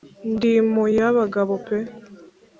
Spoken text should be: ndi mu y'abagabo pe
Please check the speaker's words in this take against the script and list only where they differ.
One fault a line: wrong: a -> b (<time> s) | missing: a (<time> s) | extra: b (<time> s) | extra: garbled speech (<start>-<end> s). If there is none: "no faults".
no faults